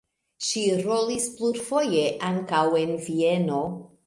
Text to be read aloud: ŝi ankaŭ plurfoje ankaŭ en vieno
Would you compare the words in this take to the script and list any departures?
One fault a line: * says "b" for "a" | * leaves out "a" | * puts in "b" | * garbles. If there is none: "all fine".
* says "rolis" for "ankaŭ"